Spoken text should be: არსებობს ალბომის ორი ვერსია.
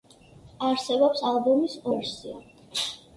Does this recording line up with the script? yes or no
no